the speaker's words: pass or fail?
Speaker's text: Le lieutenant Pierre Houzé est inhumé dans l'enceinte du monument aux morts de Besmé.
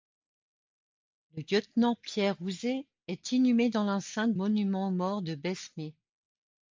fail